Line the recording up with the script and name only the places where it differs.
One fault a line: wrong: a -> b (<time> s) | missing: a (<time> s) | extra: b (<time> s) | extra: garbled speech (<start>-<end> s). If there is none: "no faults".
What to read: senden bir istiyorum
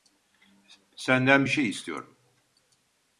extra: şey (1.5 s)